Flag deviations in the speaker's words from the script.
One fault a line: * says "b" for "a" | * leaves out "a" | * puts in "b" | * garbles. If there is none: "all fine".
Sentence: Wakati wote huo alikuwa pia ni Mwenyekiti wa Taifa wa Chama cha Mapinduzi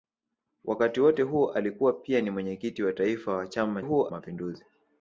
* says "huo" for "cha"